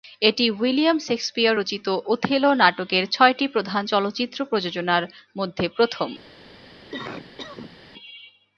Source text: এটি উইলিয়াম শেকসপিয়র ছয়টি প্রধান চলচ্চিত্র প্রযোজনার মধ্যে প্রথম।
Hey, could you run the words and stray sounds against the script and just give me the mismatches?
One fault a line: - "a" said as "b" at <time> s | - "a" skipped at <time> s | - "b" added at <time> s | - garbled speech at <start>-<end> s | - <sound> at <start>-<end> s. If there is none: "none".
- "রচিত ওথেলো নাটকের" added at 1.5 s
- cough at 6.9-7.8 s